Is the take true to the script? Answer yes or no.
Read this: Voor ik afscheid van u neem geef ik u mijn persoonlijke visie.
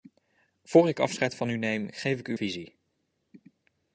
no